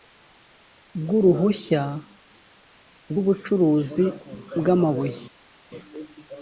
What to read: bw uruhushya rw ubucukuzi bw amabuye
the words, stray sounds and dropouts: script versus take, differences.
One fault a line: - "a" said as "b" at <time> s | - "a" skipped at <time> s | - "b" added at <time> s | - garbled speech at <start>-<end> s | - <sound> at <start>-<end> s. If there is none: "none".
none